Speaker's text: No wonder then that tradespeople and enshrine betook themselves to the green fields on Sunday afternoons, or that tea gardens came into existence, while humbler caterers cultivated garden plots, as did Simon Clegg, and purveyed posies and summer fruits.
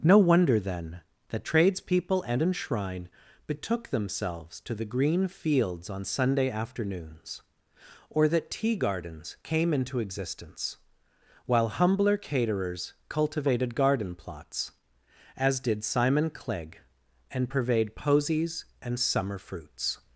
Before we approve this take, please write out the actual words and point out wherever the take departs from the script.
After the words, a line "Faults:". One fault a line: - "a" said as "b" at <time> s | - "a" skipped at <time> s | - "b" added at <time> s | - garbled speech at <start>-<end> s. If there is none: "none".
No wonder then that tradespeople and enshrine betook themselves to the green fields on Sunday afternoons, or that tea gardens came into existence, while humbler caterers cultivated garden plots, as did Simon Clegg, and purveyed posies and summer fruits.
Faults:
none